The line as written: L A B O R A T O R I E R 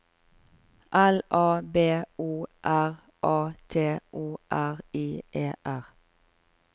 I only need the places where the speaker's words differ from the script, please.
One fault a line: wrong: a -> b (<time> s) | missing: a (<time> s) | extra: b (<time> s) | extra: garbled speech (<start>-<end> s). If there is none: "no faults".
no faults